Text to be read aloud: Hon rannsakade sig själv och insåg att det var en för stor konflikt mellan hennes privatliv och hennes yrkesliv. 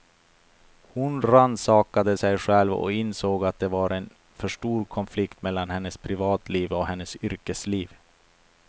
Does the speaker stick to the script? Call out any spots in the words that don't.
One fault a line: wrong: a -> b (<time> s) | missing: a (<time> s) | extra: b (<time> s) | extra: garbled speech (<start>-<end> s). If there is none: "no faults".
no faults